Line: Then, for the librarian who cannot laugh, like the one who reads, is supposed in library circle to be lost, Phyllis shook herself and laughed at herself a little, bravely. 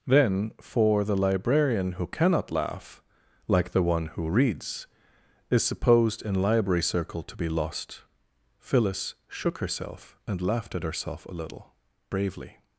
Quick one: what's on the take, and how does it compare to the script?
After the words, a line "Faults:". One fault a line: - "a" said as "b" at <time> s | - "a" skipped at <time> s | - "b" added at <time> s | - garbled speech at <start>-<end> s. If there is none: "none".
Then, for the librarian who cannot laugh, like the one who reads, is supposed in library circle to be lost, Phyllis shook herself and laughed at herself a little, bravely.
Faults:
none